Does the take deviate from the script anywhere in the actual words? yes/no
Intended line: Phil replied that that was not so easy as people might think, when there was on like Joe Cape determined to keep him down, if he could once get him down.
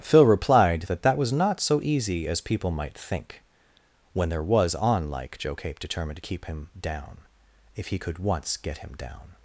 no